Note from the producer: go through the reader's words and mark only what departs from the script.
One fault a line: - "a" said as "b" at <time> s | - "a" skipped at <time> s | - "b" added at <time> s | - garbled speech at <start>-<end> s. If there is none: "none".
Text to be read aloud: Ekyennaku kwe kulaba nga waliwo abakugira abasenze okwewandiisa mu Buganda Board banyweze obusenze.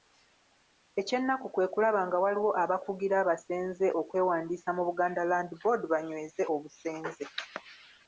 - "Land" added at 5.3 s